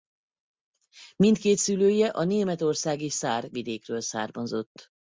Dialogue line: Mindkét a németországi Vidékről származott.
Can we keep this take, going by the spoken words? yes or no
no